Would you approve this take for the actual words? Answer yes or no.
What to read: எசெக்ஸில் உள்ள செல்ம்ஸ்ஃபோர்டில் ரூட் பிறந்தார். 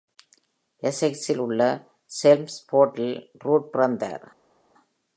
yes